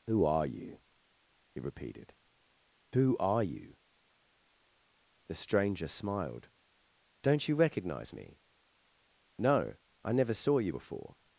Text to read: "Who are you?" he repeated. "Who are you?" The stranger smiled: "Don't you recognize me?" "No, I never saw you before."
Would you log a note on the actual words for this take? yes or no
no